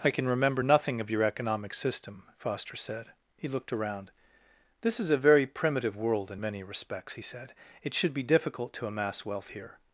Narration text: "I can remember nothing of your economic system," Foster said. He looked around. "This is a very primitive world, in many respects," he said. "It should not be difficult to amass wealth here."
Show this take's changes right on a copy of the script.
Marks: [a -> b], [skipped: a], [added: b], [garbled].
"I can remember nothing of your economic system," Foster said. He looked around. "This is a very primitive world, in many respects," he said. "It should [skipped: not] be difficult to amass wealth here."